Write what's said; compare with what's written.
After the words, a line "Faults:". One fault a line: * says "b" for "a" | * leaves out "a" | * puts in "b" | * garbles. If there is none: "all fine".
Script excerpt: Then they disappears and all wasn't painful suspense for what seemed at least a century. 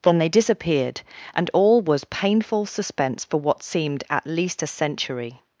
Then they disappeared and all was painful suspense for what seemed at least a century.
Faults:
* says "disappeared" for "disappears"
* says "was" for "wasn't"